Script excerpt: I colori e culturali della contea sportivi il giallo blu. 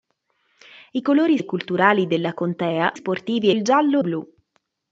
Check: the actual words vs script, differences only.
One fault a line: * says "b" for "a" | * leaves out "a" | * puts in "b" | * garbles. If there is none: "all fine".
all fine